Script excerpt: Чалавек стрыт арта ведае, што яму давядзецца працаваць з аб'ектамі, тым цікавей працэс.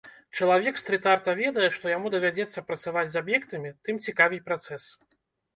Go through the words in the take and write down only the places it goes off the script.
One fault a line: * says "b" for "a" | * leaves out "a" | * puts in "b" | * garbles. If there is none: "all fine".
all fine